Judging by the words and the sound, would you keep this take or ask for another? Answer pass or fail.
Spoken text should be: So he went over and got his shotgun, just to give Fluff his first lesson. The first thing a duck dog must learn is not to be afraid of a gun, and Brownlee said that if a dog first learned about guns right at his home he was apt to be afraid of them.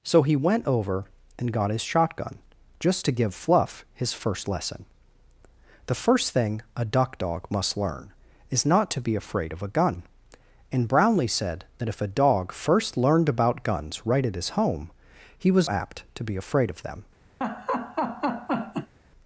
fail